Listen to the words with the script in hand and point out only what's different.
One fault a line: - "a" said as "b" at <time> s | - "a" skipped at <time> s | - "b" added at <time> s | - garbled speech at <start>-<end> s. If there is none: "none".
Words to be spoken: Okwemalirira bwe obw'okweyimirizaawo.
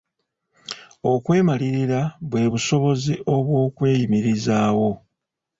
- "busobozi" added at 2.5 s